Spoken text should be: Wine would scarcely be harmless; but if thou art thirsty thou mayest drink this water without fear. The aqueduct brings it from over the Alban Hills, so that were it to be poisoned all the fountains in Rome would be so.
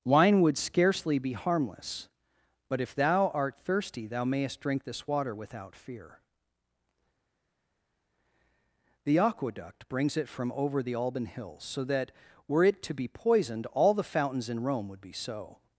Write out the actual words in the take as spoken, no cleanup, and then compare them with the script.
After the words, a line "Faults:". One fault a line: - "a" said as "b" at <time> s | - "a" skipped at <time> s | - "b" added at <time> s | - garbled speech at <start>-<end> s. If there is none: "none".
Wine would scarcely be harmless; but if thou art thirsty thou mayest drink this water without fear. The aqueduct brings it from over the Alban Hills, so that were it to be poisoned all the fountains in Rome would be so.
Faults:
none